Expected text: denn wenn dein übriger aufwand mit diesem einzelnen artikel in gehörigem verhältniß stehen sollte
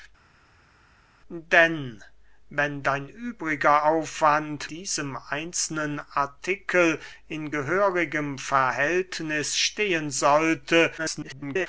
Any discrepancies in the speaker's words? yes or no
yes